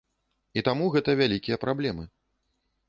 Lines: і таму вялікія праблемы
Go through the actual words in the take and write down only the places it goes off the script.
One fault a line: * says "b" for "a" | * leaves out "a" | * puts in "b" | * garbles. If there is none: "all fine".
* puts in "гэта"